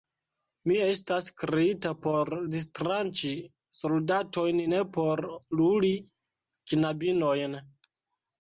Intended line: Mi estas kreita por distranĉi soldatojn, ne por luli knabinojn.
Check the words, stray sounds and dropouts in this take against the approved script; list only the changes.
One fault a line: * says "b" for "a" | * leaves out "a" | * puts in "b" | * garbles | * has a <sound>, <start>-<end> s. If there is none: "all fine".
all fine